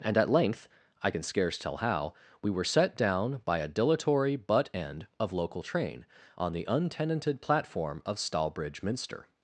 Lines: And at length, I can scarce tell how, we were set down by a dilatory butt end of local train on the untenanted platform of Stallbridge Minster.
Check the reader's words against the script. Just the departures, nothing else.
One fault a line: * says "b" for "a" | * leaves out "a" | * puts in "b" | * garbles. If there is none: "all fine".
all fine